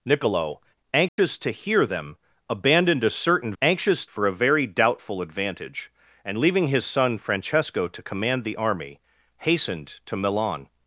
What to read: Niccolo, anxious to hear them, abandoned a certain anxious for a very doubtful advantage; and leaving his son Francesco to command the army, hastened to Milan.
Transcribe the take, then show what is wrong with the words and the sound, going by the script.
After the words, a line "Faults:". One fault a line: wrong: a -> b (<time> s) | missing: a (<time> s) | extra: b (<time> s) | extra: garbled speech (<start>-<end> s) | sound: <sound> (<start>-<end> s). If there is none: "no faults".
Niccolo, anxious to hear them, abandoned a certain anxious for a very doubtful advantage; and leaving his son Francesco to command the army, hastened to Milan.
Faults:
sound: dropout (1.1-1.2 s)